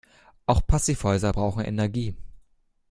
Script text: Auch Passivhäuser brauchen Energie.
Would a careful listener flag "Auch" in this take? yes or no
no